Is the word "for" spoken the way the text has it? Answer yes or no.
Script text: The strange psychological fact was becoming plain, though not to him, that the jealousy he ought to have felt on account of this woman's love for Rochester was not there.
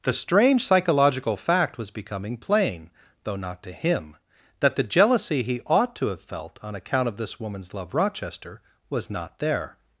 no